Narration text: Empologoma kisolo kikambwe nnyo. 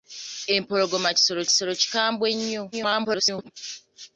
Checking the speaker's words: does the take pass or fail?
fail